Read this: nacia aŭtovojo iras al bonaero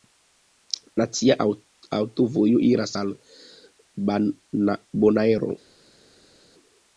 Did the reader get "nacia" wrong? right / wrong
right